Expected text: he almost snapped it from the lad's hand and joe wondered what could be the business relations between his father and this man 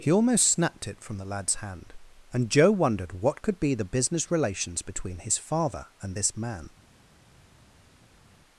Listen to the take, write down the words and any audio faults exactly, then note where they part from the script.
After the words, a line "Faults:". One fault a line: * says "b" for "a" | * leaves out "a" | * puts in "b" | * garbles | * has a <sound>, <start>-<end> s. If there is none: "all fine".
he almost snapped it from the lad's hand and joe wondered what could be the business relations between his father and this man
Faults:
all fine